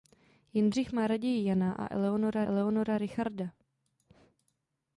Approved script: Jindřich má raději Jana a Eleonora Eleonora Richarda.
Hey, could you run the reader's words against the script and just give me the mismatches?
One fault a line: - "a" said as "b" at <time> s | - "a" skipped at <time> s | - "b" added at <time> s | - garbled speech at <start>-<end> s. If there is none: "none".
none